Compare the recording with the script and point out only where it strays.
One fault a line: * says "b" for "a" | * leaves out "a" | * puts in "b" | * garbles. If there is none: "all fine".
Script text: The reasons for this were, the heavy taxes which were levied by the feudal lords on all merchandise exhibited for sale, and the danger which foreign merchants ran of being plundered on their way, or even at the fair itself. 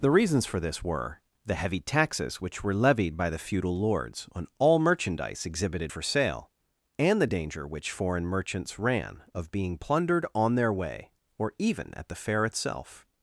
all fine